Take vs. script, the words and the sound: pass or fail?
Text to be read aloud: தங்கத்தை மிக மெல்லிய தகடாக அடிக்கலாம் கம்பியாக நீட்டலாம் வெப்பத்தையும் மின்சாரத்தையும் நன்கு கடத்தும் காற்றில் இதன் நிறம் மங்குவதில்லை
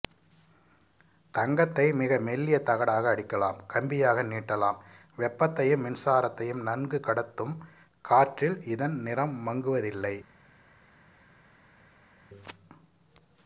pass